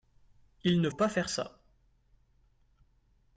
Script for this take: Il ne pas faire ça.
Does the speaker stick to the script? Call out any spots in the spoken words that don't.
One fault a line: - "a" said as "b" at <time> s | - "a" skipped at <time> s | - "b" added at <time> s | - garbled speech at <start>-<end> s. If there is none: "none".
none